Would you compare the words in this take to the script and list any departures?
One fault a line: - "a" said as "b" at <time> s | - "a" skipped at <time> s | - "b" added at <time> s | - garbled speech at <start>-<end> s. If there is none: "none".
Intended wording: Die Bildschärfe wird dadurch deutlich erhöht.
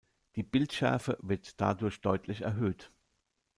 none